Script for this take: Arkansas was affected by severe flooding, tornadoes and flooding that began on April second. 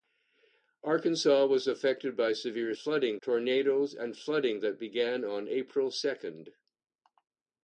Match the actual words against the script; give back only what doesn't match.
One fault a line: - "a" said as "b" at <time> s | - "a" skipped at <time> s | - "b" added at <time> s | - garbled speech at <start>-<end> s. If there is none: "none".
none